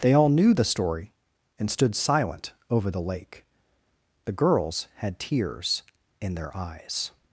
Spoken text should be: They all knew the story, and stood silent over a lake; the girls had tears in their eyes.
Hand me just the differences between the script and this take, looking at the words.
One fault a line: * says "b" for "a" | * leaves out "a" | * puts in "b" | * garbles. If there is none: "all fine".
* says "the" for "a"